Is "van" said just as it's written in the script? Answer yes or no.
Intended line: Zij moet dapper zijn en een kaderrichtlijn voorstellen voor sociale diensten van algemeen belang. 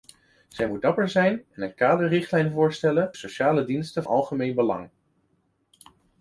no